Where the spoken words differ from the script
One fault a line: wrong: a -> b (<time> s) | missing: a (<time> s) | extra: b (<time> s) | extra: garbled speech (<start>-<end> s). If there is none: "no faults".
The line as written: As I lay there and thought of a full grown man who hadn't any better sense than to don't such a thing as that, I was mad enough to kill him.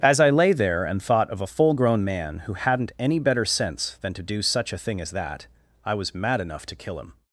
wrong: don't -> do (4.2 s)